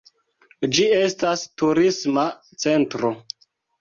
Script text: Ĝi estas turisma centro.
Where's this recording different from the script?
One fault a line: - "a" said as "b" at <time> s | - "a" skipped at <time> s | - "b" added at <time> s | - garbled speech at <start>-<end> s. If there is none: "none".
none